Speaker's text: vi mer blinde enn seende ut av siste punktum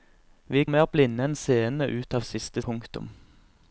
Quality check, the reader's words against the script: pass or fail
pass